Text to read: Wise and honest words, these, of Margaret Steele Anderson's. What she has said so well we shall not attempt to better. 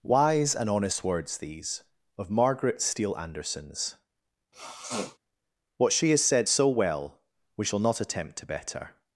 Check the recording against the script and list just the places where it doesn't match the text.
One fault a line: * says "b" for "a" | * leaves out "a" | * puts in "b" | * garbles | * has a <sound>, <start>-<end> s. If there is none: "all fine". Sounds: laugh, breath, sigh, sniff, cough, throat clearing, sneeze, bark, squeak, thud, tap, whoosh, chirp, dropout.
* has a sniff, 4.5-5.2 s